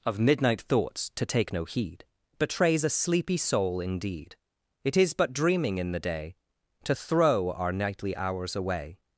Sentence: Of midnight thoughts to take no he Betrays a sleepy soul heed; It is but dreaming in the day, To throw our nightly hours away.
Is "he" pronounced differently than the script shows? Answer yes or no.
yes